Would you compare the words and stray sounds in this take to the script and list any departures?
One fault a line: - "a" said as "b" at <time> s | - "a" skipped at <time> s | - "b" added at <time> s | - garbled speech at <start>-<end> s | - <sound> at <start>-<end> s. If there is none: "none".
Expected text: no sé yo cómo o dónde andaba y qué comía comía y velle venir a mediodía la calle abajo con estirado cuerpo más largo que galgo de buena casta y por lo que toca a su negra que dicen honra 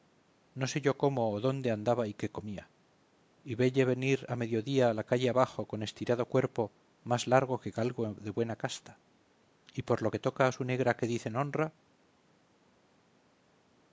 - "comía" skipped at 2.7 s